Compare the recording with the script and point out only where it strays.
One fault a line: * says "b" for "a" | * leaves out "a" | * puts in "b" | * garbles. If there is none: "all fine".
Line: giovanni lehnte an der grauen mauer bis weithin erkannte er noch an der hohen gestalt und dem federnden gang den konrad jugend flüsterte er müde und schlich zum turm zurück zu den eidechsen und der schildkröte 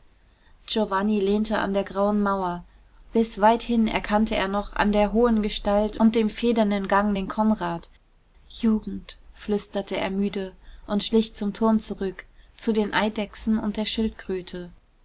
all fine